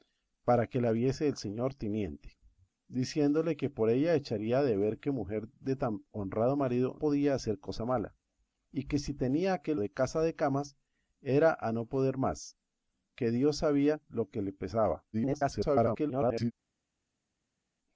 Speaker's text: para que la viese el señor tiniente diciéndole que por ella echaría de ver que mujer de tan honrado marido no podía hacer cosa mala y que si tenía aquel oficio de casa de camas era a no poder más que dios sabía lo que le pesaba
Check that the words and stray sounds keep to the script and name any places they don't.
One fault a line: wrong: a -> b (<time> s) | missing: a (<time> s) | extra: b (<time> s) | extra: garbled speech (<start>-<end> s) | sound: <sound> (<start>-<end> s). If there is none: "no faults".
missing: no (7.0 s)
missing: oficio (9.8 s)
extra: garbled speech (15.1-16.5 s)